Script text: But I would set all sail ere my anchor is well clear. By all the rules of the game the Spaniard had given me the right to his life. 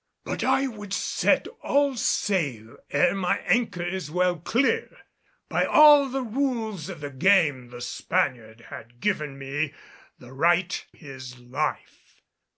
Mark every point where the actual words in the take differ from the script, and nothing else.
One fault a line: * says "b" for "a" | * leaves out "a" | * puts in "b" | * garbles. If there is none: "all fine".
* leaves out "to"